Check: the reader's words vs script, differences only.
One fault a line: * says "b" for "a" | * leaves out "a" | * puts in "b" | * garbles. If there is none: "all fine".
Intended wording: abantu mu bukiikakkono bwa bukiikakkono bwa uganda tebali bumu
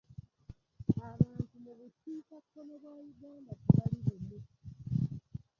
* leaves out "bukiikakkono bwa"